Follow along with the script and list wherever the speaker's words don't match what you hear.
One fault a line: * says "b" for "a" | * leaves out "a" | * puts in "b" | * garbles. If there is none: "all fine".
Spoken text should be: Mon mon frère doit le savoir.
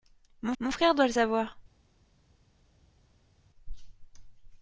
all fine